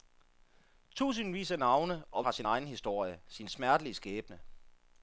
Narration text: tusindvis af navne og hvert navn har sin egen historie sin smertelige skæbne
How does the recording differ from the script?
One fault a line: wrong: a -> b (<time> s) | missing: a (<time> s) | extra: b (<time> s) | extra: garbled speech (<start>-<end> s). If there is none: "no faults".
missing: hvert navn (2.2 s)